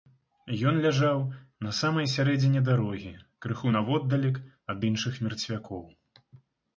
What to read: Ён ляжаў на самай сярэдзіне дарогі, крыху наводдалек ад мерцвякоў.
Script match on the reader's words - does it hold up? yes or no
no